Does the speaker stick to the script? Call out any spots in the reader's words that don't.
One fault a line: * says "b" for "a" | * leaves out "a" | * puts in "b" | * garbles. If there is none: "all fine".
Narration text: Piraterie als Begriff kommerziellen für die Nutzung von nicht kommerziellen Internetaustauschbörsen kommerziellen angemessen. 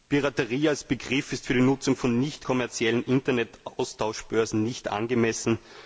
* says "ist" for "kommerziellen"
* says "nicht" for "kommerziellen"